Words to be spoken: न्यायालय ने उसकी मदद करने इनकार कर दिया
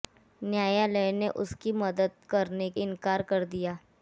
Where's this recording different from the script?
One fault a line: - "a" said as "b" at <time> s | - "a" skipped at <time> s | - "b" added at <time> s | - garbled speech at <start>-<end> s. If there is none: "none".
none